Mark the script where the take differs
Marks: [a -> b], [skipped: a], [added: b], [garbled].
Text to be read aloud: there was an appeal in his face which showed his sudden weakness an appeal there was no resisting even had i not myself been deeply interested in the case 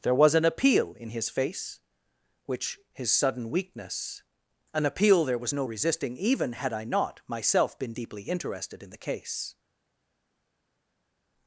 there was an appeal in his face which [skipped: showed] his sudden weakness an appeal there was no resisting even had i not myself been deeply interested in the case